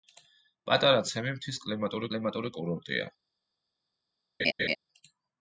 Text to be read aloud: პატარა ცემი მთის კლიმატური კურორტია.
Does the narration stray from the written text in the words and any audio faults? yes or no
yes